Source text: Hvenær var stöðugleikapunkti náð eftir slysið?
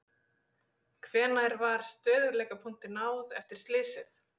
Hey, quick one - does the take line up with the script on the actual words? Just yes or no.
yes